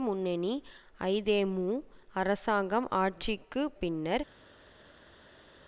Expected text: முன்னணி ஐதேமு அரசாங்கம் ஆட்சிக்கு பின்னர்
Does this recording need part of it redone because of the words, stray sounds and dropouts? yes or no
no